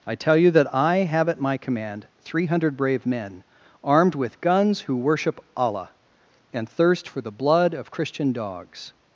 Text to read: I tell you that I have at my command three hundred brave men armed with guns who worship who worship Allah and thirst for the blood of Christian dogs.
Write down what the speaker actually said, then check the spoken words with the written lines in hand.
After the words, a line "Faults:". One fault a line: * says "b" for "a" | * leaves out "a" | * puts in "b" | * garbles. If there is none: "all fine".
I tell you that I have at my command three hundred brave men armed with guns who worship Allah and thirst for the blood of Christian dogs.
Faults:
* leaves out "who worship"